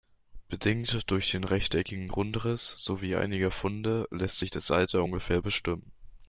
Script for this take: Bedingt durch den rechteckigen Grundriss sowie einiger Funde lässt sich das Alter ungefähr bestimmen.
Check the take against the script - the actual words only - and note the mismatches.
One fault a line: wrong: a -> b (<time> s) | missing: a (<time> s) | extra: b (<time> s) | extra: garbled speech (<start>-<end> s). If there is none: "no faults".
no faults